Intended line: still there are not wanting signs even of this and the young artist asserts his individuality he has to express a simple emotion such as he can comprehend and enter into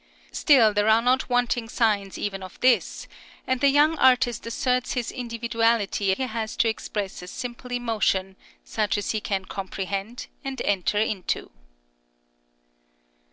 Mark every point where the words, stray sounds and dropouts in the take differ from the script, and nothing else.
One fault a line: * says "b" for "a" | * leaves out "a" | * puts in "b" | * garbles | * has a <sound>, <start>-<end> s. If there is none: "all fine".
all fine